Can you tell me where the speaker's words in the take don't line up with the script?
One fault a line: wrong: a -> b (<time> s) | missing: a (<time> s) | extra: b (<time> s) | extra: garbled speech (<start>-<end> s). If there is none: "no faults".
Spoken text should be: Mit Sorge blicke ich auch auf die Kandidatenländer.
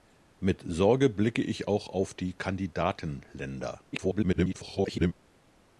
extra: garbled speech (3.9-5.1 s)